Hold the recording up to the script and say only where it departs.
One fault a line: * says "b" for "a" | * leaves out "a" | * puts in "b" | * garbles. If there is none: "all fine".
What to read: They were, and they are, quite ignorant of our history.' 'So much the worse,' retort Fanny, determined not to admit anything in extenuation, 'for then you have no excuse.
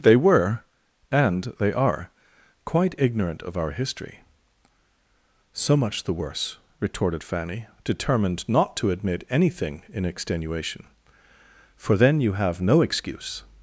* says "retorted" for "retort"